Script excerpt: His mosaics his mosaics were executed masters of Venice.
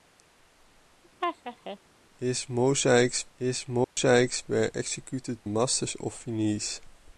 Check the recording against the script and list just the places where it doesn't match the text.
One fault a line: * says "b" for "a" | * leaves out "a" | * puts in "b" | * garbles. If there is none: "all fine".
all fine